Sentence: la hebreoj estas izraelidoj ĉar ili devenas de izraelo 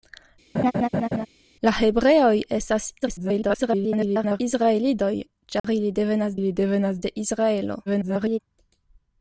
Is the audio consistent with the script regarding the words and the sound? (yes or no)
no